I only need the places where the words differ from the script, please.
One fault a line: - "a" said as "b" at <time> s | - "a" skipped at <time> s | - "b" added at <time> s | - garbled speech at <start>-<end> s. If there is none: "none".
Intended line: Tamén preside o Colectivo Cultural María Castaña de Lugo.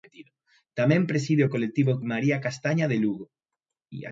- "Cultural" skipped at 1.9 s